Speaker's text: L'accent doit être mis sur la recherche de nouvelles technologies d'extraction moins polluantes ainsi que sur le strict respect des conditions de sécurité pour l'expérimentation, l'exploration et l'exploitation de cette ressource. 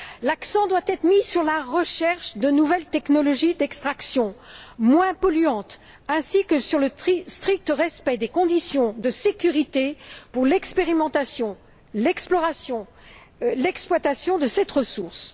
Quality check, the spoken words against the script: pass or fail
pass